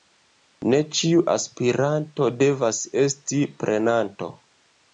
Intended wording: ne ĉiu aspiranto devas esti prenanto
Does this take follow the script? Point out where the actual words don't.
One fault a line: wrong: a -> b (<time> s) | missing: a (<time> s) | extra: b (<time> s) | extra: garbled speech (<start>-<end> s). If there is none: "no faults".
no faults